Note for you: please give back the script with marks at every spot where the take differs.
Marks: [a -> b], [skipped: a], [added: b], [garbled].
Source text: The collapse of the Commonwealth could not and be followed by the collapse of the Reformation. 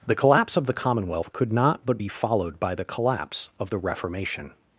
The collapse of the Commonwealth could not [and -> but] be followed by the collapse of the Reformation.